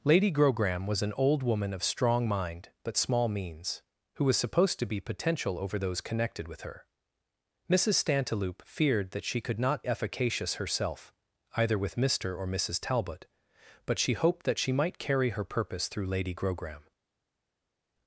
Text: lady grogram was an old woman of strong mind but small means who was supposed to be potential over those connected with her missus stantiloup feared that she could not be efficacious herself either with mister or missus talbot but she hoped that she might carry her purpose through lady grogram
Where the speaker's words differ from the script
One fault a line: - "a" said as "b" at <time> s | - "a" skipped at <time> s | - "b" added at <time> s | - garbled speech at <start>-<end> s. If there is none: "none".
- "be" skipped at 9.8 s